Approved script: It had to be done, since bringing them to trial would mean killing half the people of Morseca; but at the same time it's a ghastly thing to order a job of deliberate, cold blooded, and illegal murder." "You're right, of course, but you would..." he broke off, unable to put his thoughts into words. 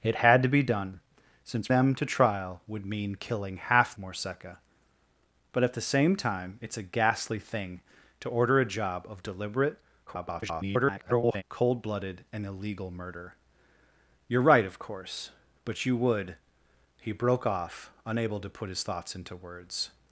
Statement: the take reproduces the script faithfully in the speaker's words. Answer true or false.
false